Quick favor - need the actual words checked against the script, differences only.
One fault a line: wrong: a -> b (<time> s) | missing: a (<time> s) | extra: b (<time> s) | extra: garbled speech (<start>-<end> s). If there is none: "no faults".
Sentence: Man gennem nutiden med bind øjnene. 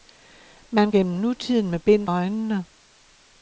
no faults